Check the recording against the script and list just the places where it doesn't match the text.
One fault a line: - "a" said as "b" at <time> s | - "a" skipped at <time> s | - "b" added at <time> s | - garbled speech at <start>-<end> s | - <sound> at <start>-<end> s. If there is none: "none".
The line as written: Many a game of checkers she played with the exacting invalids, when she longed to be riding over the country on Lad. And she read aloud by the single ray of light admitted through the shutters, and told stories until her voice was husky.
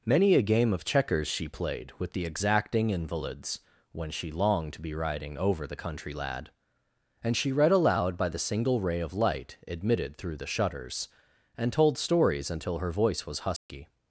- "on" skipped at 6.1 s
- dropout at 13.6-13.7 s